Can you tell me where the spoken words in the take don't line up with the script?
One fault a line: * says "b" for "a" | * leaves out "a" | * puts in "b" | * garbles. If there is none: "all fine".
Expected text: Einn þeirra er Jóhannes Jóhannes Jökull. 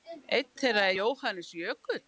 * leaves out "Jóhannes"